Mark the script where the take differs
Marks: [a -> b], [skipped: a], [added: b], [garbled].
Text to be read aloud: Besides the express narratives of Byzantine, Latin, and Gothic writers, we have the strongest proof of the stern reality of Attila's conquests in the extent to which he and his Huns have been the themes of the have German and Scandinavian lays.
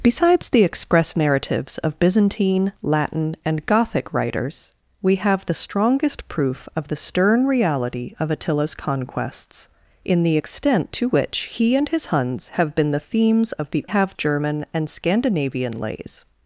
Besides the express narratives of Byzantine, Latin, and Gothic writers, we have the strongest proof of the stern reality of Attila's conquests in the extent to which he and his Huns have been the themes of the have German and Scandinavian lays.